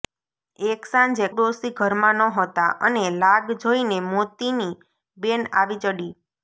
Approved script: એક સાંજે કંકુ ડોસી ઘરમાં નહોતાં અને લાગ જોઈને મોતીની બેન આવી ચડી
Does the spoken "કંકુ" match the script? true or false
false